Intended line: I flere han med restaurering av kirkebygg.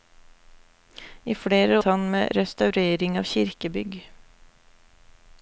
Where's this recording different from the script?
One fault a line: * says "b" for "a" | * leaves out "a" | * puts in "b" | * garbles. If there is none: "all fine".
all fine